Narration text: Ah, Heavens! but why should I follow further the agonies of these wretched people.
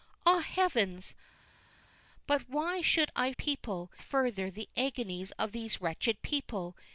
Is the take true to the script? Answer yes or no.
no